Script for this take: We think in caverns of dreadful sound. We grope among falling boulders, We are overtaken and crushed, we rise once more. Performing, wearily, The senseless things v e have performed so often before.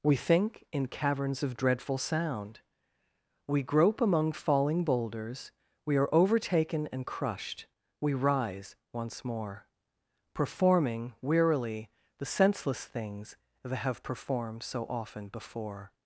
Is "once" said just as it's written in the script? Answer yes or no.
yes